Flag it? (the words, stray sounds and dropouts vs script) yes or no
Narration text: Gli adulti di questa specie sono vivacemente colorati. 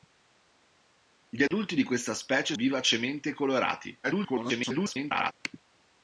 yes